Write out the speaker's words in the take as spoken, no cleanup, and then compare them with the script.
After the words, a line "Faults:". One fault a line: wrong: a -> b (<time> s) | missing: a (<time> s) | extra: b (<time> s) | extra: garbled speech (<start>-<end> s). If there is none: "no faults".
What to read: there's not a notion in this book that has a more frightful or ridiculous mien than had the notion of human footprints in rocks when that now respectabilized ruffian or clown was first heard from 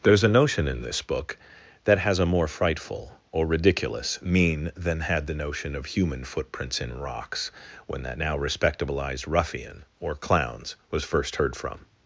there's a notion in this book that has a more frightful or ridiculous mien than had the notion of human footprints in rocks when that now respectabilized ruffian or clowns was first heard from
Faults:
missing: not (0.2 s)
wrong: clown -> clowns (10.1 s)